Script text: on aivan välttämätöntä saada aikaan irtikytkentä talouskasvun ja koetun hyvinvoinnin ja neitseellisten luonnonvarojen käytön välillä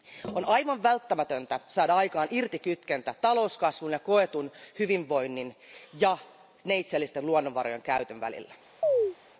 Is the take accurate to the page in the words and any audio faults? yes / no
no